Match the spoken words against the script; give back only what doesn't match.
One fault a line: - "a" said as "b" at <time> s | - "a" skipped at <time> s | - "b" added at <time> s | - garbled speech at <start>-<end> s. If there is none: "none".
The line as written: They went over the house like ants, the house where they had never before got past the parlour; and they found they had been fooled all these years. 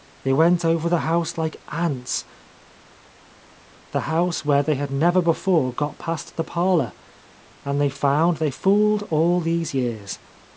- "had been" skipped at 8.5 s